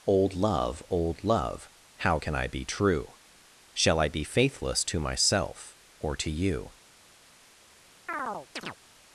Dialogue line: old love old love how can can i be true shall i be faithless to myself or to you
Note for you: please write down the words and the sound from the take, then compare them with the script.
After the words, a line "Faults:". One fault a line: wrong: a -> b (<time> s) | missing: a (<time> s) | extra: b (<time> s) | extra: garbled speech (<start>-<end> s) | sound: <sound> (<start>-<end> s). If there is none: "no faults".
old love old love how can i be true shall i be faithless to myself or to you
Faults:
missing: can (2.3 s)
sound: chirp (8.1-8.8 s)